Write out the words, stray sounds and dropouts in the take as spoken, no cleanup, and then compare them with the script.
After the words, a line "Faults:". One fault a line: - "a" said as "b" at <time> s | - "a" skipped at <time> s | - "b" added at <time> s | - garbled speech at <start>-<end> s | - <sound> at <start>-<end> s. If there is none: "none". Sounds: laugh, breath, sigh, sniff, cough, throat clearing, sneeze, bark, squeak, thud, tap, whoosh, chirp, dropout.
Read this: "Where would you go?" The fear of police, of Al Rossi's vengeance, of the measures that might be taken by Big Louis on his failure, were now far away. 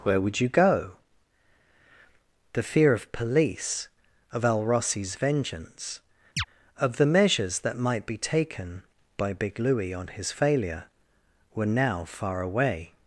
"Where would you go?" The fear of police, of Al Rossi's vengeance, of the measures that might be taken by Big Louis on his failure, were now far away.
Faults:
- chirp at 6.4-6.4 s